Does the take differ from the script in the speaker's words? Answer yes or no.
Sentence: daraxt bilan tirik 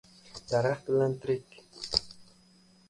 no